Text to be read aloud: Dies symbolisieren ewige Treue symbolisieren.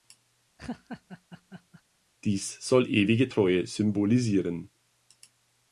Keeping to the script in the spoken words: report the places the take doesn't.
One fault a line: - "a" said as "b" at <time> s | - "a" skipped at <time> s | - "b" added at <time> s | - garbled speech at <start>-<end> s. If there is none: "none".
- "symbolisieren" said as "soll" at 2.7 s